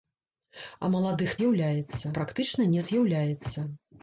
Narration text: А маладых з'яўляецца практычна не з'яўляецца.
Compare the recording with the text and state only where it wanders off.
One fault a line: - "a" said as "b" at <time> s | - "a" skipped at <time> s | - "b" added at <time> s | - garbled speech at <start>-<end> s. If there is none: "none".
none